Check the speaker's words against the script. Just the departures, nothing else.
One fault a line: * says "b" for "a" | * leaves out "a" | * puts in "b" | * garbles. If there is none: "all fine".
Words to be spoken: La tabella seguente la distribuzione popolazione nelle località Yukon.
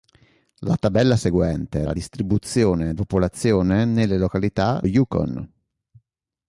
all fine